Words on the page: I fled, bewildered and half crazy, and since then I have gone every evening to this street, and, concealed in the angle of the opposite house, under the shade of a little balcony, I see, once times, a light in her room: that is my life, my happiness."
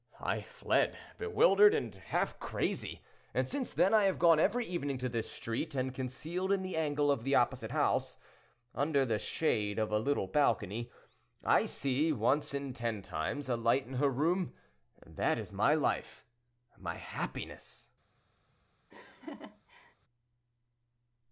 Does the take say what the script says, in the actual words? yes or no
no